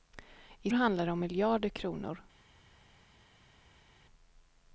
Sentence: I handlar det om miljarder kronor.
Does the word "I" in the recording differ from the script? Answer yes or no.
no